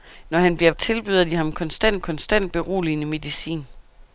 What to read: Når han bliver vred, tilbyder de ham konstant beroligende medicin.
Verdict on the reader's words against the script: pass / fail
fail